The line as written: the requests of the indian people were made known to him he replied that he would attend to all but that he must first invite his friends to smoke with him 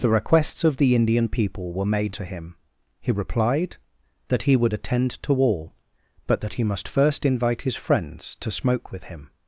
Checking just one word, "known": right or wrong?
wrong